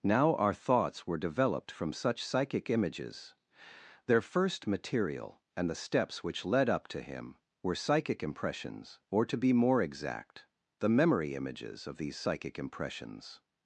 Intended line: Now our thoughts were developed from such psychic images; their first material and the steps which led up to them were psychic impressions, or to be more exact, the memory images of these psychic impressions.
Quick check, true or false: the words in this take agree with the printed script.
false